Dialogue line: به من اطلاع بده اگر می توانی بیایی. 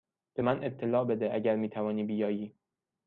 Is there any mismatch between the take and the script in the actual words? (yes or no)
no